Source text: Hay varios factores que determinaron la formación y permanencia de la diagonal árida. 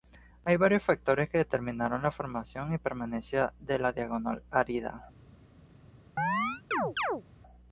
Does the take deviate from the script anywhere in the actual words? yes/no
no